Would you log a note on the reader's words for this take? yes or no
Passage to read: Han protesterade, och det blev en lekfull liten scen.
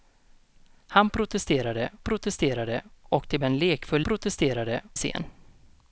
yes